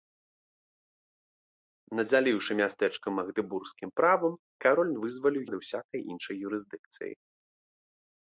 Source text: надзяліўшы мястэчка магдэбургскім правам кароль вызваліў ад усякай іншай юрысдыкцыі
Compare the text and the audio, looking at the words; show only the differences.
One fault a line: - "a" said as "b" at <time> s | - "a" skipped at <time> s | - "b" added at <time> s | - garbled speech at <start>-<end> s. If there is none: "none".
none